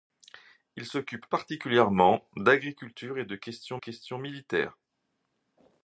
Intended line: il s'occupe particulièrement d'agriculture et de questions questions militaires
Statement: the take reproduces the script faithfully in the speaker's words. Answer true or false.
true